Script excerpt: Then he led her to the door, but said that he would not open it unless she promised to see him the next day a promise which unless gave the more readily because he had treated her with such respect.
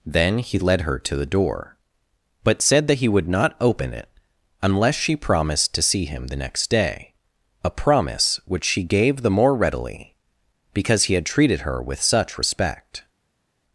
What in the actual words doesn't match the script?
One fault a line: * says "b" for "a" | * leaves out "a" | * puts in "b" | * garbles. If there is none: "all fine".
* says "she" for "unless"